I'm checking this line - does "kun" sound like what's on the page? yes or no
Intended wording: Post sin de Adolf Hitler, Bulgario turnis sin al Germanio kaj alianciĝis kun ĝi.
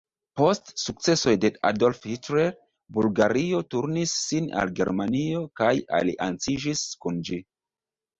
yes